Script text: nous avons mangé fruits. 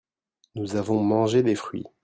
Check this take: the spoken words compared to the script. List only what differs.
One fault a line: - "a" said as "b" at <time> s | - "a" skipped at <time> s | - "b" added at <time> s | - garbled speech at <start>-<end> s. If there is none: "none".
- "des" added at 1.4 s